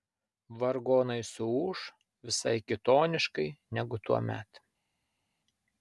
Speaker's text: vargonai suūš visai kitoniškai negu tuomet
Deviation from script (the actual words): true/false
false